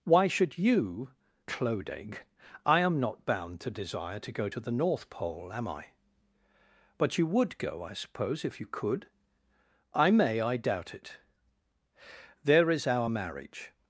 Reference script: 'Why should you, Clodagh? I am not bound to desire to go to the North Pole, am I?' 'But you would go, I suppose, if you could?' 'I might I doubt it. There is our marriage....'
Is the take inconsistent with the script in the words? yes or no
yes